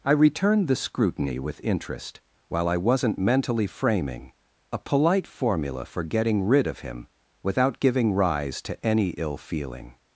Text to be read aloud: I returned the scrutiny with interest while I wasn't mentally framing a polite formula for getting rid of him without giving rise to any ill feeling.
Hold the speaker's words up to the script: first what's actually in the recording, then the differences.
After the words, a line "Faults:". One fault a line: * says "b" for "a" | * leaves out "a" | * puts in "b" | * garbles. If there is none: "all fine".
I returned the scrutiny with interest while I wasn't mentally framing a polite formula for getting rid of him without giving rise to any ill feeling.
Faults:
all fine